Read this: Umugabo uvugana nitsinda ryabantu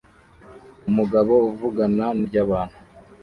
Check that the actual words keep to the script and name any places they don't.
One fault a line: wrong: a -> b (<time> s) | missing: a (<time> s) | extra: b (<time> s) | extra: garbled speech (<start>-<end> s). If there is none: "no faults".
missing: nitsinda (2.0 s)